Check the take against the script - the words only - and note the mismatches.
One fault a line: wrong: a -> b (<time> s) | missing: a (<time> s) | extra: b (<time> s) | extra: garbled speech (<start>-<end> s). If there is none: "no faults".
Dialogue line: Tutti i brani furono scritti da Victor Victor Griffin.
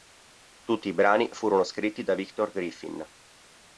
missing: Victor (2.5 s)